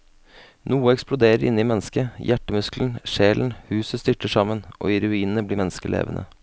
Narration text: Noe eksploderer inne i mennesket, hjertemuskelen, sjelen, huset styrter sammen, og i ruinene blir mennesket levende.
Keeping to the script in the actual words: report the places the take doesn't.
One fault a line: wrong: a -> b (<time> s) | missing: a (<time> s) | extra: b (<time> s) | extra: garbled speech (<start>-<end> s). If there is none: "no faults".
no faults